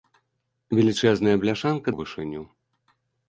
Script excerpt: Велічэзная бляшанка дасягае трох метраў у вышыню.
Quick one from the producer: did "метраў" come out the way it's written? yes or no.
no